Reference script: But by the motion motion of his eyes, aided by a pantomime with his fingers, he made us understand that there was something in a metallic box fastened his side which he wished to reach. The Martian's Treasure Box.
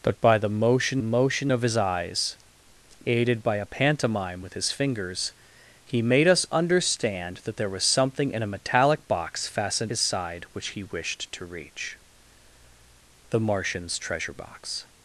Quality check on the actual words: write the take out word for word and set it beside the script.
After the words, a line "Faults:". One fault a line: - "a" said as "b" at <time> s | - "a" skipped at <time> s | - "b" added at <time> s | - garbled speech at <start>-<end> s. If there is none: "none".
But by the motion motion of his eyes, aided by a pantomime with his fingers, he made us understand that there was something in a metallic box fastened his side which he wished to reach. The Martian's Treasure Box.
Faults:
none